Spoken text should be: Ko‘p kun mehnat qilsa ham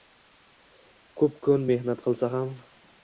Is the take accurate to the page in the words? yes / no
yes